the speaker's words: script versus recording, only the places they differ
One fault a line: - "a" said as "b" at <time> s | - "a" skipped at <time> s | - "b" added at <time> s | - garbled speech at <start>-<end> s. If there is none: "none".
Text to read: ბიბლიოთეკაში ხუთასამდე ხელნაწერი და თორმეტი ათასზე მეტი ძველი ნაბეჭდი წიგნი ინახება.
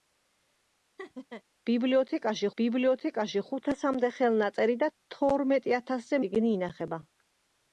- "ბიბლიოთეკაში" added at 2.6 s
- "მეტი ძველი ნაბეჭდი" skipped at 6.2 s